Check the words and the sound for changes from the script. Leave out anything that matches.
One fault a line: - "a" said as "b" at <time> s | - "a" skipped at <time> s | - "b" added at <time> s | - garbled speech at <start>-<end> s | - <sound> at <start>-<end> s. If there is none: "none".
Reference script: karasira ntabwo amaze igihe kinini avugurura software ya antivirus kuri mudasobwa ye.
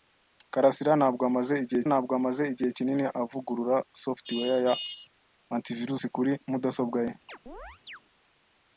- "ntabwo amaze igihe" added at 1.9 s
- chirp at 7.3-8.0 s